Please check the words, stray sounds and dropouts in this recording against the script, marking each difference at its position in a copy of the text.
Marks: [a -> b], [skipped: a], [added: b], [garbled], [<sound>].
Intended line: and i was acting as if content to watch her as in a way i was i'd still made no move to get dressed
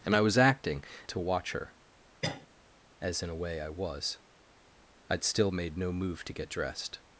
and i was acting [skipped: as if content] to watch her [cough] as in a way i was i'd still made no move to get dressed